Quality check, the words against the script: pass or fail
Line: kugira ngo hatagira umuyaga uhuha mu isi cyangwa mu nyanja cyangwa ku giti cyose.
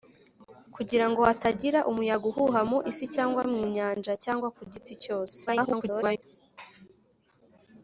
fail